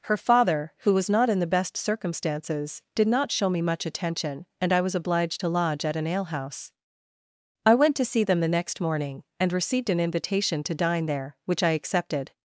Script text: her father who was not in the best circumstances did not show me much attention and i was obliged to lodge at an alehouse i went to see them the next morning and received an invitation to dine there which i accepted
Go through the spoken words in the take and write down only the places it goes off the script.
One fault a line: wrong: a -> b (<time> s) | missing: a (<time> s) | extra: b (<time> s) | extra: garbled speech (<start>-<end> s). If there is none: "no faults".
no faults